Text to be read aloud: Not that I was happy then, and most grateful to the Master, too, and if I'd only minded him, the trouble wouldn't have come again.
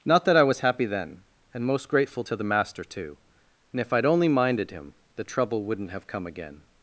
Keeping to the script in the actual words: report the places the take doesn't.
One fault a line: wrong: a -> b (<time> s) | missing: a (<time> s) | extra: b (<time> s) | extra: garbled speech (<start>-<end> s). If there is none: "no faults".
no faults